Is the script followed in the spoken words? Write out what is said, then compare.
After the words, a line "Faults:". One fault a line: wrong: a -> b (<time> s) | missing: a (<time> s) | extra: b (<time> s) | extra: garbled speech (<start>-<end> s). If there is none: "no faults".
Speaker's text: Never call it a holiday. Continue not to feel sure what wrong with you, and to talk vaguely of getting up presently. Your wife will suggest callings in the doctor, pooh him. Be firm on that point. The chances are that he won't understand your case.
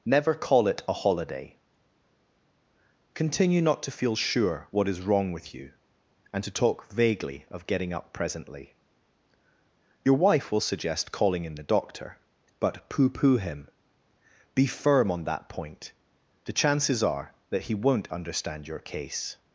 Never call it a holiday. Continue not to feel sure what is wrong with you, and to talk vaguely of getting up presently. Your wife will suggest calling in the doctor, but pooh pooh him. Be firm on that point. The chances are that he won't understand your case.
Faults:
extra: is (4.9 s)
wrong: callings -> calling (11.1 s)
extra: but pooh (12.6 s)